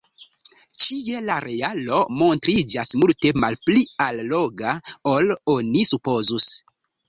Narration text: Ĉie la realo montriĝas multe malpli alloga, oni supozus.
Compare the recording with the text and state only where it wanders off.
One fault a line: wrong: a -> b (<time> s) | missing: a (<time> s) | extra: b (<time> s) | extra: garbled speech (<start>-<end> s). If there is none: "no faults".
extra: ol (5.2 s)